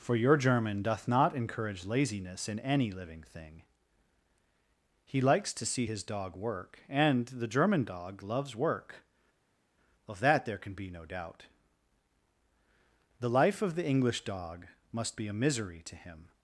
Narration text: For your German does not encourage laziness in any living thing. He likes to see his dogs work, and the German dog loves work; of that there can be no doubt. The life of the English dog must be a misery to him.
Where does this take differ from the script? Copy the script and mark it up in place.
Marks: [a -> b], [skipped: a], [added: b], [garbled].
For your German [does -> doth] not encourage laziness in any living thing. He likes to see his [dogs -> dog] work, and the German dog loves work; of that there can be no doubt. The life of the English dog must be a misery to him.